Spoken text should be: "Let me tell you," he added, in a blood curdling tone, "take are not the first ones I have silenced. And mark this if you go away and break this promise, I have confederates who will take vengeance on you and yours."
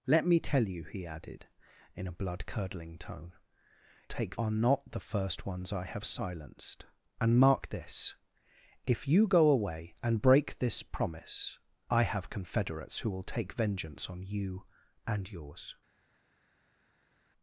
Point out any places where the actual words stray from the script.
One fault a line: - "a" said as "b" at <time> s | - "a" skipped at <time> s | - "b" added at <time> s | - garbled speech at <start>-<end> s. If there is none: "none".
none